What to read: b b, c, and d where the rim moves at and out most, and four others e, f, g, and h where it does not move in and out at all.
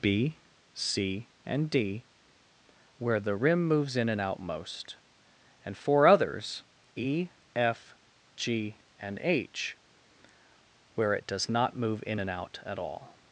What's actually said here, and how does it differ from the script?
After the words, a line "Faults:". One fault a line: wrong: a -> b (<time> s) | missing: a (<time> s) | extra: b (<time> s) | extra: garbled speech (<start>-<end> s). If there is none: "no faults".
b, c, and d where the rim moves in and out most, and four others e, f, g, and h where it does not move in and out at all.
Faults:
missing: b (0.3 s)
wrong: at -> in (3.9 s)